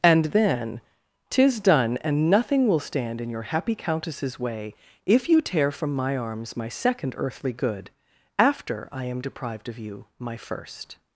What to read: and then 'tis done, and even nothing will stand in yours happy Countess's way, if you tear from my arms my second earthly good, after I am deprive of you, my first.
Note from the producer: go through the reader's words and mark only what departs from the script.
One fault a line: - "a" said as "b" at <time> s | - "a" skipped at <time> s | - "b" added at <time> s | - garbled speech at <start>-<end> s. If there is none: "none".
- "even" skipped at 2.3 s
- "yours" said as "your" at 3.3 s
- "deprive" said as "deprived" at 9.2 s